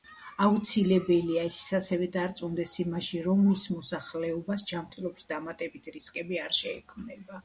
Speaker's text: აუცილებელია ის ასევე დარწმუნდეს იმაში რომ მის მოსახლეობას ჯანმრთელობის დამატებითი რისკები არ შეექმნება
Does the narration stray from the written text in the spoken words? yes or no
no